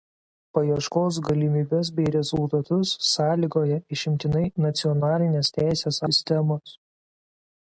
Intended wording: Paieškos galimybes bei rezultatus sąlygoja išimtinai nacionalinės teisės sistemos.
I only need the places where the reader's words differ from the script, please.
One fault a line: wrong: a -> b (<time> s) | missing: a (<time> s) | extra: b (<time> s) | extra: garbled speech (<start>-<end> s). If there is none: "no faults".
no faults